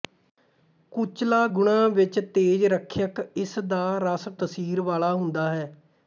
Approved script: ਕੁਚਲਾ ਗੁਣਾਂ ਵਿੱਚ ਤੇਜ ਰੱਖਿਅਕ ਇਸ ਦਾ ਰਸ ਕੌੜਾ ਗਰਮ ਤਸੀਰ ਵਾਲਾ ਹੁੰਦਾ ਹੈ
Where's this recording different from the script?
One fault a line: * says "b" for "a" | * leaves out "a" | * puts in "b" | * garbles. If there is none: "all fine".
* leaves out "ਕੌੜਾ ਗਰਮ"